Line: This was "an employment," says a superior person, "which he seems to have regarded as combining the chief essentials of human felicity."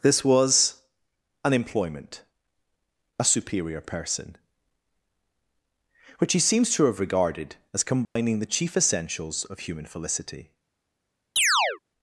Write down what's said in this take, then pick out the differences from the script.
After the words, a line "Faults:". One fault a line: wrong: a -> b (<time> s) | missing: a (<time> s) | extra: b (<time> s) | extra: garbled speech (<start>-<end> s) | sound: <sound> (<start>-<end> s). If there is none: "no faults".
This was "an employment," a superior person, "which he seems to have regarded as combining the chief essentials of human felicity."
Faults:
missing: says (2.2 s)
sound: dropout (8.0-8.2 s)
sound: chirp (11.4-11.8 s)